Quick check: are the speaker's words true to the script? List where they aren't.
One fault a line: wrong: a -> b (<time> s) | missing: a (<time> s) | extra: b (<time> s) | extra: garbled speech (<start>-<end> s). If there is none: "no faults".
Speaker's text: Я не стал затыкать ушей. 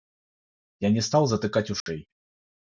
no faults